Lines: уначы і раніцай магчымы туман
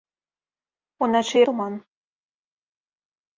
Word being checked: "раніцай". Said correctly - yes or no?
no